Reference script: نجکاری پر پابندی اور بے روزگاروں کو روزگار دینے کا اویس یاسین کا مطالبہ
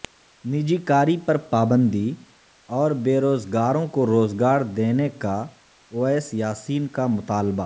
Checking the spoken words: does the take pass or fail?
pass